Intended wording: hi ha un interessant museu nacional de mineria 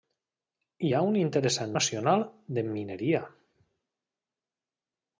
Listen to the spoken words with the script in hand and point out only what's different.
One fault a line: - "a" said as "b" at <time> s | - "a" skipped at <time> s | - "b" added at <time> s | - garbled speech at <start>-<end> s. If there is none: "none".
- "museu" skipped at 1.7 s